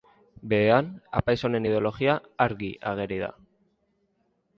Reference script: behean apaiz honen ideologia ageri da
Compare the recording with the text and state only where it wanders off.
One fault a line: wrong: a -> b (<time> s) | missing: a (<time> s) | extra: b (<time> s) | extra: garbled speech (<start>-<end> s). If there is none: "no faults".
extra: argi (2.4 s)